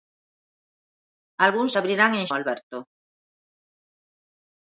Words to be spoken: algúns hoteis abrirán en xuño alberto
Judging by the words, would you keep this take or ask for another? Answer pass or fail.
fail